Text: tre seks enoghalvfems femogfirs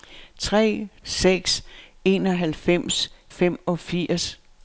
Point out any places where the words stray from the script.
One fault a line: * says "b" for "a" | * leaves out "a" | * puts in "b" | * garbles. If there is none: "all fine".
all fine